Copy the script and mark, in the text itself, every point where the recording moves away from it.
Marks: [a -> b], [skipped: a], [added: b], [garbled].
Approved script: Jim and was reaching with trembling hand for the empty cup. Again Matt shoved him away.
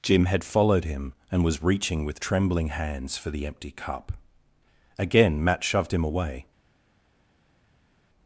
Jim [added: had followed him] and was reaching with trembling [hand -> hands] for the empty cup. Again Matt shoved him away.